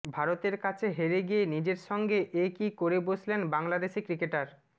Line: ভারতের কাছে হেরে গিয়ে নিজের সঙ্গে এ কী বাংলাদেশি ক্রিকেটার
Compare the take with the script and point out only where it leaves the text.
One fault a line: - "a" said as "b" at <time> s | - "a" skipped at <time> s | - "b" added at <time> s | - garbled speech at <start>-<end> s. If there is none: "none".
- "করে বসলেন" added at 2.8 s